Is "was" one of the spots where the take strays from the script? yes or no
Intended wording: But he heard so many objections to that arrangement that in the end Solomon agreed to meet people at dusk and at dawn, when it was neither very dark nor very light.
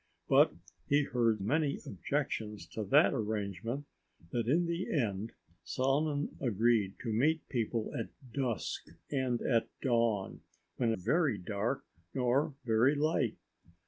yes